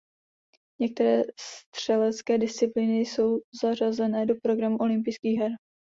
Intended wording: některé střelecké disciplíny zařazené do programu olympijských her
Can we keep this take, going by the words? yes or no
no